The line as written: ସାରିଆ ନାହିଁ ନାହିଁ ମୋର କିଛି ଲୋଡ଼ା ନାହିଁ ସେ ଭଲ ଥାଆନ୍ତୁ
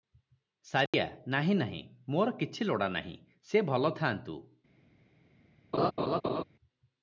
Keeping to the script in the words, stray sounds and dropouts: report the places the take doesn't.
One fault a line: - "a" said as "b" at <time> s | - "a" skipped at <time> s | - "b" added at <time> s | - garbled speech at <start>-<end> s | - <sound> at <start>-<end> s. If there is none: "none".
- dropout at 0.9-0.9 s
- laugh at 5.7-6.4 s